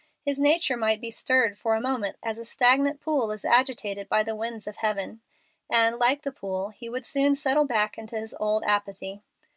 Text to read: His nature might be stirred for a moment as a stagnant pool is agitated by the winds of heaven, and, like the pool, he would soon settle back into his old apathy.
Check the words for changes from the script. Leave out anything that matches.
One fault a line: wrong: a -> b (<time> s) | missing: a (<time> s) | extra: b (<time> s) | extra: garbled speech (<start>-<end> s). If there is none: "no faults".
no faults